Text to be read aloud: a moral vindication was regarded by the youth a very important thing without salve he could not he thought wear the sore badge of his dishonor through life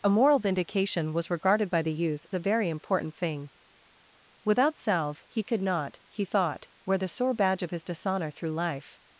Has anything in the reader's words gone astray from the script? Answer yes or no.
no